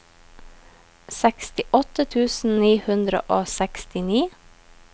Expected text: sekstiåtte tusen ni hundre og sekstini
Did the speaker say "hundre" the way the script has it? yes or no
yes